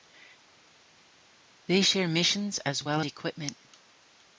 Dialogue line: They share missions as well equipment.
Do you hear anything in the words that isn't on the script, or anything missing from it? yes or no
no